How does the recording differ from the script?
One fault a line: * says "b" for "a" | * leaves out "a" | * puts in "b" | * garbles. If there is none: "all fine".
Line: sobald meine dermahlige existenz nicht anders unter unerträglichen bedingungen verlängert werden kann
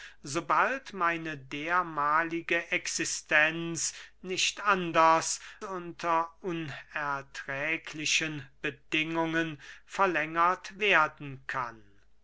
all fine